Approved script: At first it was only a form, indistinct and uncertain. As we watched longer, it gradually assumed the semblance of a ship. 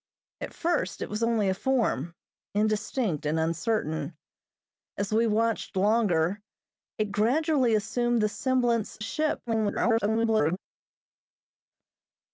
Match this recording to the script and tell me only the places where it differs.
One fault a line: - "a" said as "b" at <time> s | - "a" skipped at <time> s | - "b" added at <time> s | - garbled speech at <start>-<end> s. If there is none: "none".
- "of" skipped at 9.0 s
- garbled speech at 9.5-10.6 s